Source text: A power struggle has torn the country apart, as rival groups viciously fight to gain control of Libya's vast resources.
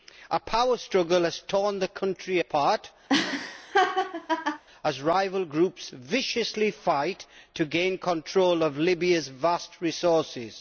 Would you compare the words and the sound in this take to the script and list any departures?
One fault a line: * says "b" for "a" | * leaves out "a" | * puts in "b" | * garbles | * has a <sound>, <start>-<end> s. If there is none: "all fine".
* has a laugh, 3.1-4.6 s